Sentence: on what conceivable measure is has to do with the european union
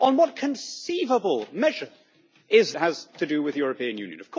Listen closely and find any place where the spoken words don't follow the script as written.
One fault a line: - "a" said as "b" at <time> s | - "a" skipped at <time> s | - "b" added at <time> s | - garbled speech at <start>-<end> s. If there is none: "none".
none